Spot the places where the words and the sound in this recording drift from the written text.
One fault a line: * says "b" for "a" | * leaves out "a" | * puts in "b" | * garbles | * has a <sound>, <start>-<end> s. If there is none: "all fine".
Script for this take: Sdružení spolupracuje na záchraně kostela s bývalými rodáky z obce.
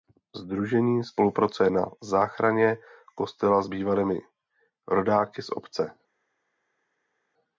all fine